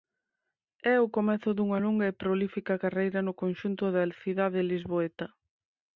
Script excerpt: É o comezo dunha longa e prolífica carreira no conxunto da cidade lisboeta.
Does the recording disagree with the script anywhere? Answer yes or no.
no